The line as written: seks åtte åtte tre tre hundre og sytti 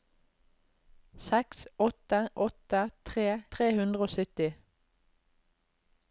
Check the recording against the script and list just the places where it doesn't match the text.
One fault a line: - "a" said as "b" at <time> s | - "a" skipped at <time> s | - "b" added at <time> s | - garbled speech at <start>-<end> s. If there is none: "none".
none